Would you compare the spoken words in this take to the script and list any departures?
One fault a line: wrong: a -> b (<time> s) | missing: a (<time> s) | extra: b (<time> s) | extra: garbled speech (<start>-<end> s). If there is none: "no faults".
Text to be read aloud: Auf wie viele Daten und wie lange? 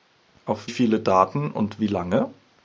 missing: wie (0.7 s)